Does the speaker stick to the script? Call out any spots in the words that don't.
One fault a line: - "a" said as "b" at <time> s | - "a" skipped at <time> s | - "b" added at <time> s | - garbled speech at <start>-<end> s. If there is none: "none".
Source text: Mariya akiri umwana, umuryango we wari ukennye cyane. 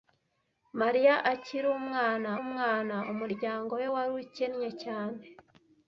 - "umwana" added at 2.4 s